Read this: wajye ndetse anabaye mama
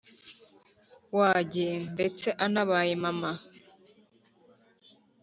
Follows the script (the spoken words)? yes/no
yes